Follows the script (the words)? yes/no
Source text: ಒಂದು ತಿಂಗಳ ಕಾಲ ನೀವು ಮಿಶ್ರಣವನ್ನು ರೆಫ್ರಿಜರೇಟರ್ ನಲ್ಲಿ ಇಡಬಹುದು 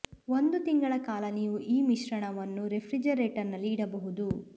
no